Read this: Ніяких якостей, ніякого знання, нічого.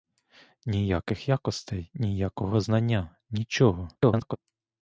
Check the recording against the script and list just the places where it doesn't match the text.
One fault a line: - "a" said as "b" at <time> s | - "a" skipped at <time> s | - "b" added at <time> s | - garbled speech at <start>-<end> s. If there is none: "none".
- garbled speech at 4.0-4.4 s